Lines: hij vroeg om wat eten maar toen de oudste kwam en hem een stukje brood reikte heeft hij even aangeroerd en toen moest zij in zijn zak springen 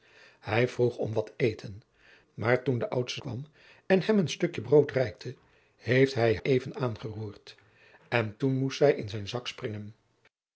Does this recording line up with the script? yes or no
yes